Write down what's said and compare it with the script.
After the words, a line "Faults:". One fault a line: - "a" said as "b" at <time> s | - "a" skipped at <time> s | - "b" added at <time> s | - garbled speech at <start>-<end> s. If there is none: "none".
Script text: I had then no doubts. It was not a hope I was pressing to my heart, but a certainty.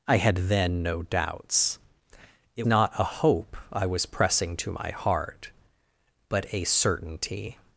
I had then no doubts. It not a hope I was pressing to my heart, but a certainty.
Faults:
- "was" skipped at 2.7 s